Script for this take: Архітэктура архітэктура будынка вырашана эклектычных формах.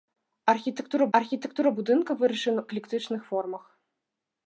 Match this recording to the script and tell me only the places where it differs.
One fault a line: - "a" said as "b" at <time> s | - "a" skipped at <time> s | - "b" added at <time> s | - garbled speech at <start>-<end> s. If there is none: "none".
none